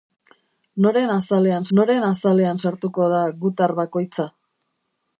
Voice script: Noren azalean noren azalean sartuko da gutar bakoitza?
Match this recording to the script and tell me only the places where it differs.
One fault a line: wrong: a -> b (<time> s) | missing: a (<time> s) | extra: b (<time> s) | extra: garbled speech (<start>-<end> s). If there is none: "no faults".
no faults